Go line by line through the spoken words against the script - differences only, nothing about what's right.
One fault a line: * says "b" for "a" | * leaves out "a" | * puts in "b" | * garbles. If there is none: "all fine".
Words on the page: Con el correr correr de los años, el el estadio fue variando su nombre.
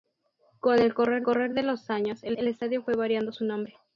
all fine